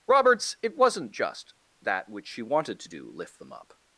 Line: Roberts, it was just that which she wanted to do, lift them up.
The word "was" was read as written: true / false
false